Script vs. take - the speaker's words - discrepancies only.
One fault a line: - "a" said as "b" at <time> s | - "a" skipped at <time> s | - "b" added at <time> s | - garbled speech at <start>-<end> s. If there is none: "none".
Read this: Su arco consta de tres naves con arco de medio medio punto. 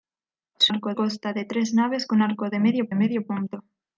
none